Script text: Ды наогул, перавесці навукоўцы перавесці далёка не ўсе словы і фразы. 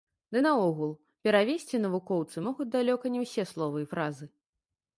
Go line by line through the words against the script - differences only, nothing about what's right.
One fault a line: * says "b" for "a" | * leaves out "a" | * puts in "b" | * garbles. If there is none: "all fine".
* says "могуць" for "перавесці"